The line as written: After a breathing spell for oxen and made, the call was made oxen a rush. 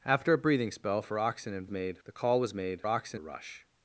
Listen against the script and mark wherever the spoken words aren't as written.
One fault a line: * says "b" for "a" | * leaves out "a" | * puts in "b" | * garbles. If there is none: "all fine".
all fine